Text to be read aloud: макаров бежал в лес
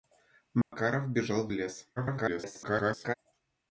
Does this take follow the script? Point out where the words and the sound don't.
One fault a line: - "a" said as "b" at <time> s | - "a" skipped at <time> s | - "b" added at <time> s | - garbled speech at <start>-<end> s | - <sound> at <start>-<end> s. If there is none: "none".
- dropout at 0.6-0.7 s
- garbled speech at 2.0-3.1 s